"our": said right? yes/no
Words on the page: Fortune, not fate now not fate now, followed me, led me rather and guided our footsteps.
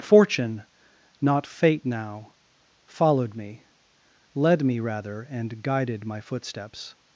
no